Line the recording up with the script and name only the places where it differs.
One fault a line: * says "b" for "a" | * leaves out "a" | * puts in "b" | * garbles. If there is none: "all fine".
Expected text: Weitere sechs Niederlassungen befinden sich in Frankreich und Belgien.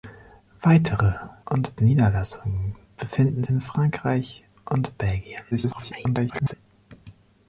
* says "und" for "sechs"
* leaves out "sich"
* garbles